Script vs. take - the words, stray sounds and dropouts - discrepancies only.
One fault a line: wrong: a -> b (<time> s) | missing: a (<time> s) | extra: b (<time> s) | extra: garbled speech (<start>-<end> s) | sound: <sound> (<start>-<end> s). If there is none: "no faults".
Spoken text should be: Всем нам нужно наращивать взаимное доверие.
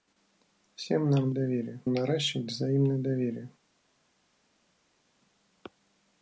wrong: нужно -> доверие (1.3 s)